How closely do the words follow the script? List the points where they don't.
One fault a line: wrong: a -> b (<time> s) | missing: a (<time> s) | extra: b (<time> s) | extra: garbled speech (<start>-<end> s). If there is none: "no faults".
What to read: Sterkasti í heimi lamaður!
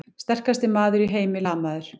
extra: maður (0.8 s)